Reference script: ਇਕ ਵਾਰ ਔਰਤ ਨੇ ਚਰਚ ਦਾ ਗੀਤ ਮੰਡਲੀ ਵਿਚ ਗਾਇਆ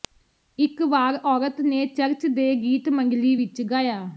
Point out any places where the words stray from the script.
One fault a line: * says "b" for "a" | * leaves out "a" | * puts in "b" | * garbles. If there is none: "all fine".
* says "ਦੇ" for "ਦਾ"